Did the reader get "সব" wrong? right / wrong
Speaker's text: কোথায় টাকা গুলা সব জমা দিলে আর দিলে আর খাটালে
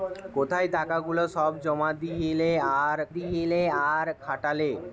right